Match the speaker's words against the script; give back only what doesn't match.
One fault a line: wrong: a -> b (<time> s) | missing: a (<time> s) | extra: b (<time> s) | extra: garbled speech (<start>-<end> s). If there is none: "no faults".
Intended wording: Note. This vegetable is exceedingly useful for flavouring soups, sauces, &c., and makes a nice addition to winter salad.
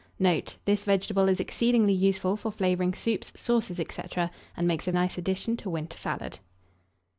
no faults